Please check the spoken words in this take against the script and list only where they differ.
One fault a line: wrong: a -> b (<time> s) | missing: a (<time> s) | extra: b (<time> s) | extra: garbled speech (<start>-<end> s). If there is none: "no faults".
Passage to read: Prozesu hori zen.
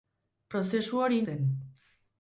no faults